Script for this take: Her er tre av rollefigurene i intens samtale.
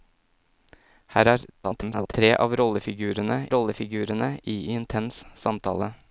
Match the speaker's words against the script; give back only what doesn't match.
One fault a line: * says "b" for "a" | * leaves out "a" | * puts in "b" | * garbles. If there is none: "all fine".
* garbles
* puts in "rollefigurene"